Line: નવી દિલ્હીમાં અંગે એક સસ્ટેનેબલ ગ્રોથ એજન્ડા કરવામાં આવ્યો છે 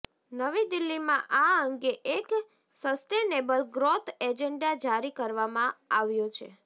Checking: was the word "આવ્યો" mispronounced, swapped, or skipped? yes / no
no